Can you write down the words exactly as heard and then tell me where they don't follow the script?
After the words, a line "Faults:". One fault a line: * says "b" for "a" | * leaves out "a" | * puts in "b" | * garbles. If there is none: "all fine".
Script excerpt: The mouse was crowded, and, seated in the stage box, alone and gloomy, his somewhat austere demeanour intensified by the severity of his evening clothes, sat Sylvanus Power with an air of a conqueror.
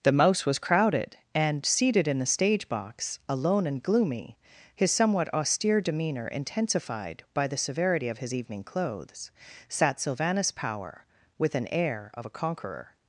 The mouse was crowded, and, seated in the stage box, alone and gloomy, his somewhat austere demeanour intensified by the severity of his evening clothes, sat Sylvanus Power with an air of a conqueror.
Faults:
all fine